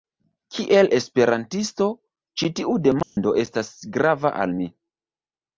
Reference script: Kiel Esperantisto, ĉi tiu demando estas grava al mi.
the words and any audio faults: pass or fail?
fail